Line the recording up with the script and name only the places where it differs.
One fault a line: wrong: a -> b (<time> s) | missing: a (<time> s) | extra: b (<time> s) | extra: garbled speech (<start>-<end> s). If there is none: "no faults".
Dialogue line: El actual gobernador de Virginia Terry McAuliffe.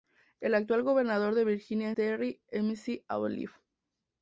no faults